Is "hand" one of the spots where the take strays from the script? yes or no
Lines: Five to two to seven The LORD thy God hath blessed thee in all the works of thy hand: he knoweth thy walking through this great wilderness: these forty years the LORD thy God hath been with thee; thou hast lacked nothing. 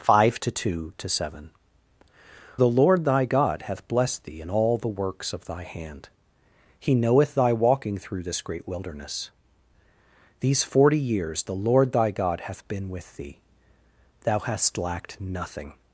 no